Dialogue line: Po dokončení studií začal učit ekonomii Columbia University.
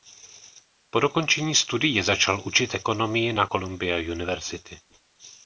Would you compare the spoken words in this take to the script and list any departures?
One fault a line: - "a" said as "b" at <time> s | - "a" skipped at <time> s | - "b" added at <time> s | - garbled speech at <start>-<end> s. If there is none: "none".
- "na" added at 3.3 s